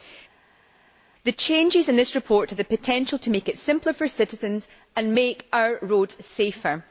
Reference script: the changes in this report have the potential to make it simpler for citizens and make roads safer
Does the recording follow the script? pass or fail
fail